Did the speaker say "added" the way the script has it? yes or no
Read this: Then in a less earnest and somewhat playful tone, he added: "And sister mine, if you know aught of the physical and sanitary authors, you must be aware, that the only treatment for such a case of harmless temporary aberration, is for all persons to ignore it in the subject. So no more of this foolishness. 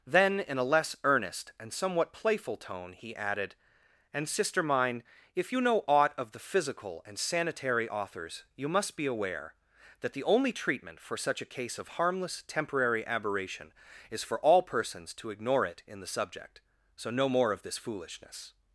yes